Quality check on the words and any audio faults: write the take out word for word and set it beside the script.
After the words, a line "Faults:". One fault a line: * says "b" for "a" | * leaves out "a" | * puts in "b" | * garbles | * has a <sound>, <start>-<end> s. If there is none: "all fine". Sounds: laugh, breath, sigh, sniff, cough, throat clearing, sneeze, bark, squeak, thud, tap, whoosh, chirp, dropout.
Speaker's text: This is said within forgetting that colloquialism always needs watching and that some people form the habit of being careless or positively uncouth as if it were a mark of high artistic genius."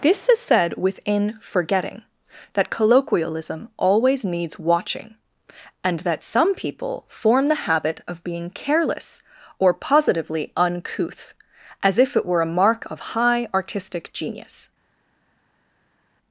This is said within forgetting that colloquialism always needs watching and that some people form the habit of being careless or positively uncouth as if it were a mark of high artistic genius."
Faults:
all fine